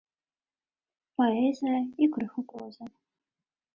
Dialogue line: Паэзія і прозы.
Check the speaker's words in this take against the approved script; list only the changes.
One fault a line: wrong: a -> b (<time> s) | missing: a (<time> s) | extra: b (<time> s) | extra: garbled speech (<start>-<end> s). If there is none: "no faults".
extra: крыху (2.2 s)